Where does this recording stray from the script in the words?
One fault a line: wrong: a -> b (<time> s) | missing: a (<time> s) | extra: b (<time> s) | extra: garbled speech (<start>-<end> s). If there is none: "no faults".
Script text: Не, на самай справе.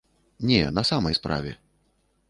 no faults